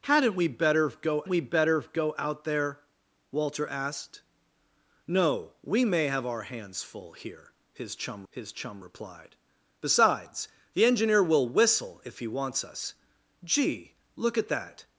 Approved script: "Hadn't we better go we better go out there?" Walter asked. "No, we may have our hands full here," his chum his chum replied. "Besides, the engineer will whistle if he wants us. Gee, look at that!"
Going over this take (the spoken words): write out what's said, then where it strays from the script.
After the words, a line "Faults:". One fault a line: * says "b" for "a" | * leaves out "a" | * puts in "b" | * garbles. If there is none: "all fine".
"Hadn't we better go we better go out there?" Walter asked. "No, we may have our hands full here," his chum his chum replied. "Besides, the engineer will whistle if he wants us. Gee, look at that!"
Faults:
all fine